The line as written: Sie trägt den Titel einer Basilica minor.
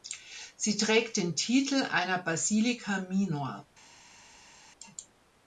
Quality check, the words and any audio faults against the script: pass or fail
pass